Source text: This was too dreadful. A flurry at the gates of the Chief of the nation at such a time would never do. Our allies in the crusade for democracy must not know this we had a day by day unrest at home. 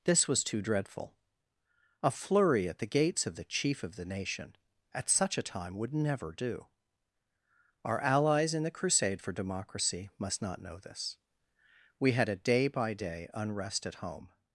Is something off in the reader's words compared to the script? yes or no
no